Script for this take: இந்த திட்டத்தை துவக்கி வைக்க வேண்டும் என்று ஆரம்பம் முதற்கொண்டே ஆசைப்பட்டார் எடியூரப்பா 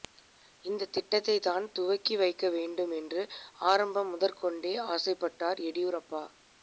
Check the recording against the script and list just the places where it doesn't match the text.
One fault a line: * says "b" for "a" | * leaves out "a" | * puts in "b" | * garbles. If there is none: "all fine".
* puts in "தான்"